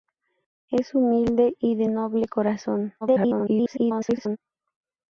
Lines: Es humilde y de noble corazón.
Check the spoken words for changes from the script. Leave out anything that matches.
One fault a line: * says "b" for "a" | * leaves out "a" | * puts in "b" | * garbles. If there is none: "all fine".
* garbles